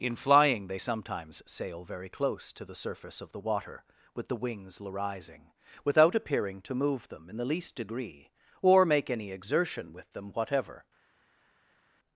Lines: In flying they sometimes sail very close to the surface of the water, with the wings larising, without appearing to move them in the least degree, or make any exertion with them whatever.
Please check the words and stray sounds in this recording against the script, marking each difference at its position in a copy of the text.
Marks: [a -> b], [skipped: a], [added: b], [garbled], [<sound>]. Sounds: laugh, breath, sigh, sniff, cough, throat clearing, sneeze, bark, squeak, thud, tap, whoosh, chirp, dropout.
In flying they sometimes sail very close to the surface of the water, with the wings larising, without appearing to move them in the least degree, or make any exertion with them whatever.